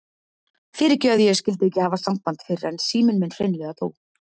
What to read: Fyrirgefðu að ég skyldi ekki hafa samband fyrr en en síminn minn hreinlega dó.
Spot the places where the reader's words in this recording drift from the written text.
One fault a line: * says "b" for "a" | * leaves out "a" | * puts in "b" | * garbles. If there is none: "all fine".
* leaves out "en"